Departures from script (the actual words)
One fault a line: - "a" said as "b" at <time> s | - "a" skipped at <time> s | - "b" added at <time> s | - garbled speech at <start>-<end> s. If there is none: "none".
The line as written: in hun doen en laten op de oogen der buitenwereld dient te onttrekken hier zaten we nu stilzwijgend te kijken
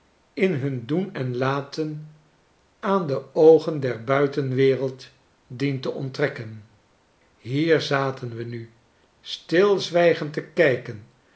- "op" said as "aan" at 2.8 s